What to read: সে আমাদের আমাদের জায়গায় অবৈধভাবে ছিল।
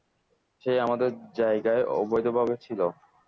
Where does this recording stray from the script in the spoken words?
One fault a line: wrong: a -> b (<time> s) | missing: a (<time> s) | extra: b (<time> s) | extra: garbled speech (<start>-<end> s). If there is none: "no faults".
missing: আমাদের (1.1 s)